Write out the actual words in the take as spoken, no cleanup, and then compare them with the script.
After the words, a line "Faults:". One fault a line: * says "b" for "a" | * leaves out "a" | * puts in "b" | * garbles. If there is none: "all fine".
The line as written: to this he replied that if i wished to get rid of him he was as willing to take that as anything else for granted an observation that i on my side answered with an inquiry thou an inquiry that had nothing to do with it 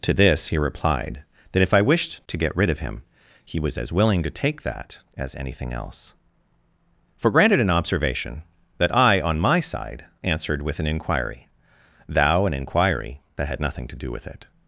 to this he replied that if i wished to get rid of him he was as willing to take that as anything else for granted an observation that i on my side answered with an inquiry thou an inquiry that had nothing to do with it
Faults:
all fine